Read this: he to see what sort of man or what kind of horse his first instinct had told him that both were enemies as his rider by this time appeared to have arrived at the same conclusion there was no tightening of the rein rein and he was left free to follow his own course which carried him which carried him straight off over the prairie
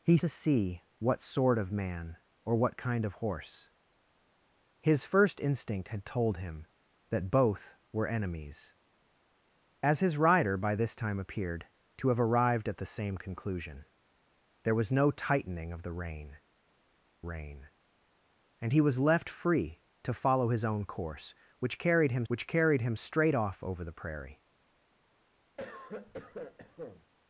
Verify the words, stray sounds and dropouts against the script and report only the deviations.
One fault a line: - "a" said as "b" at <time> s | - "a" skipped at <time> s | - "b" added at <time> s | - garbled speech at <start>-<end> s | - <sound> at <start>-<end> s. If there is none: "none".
- cough at 25.6-27.1 s